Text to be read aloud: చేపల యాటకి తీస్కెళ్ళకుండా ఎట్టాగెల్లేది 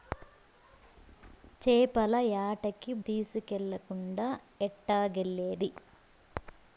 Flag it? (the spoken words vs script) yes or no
no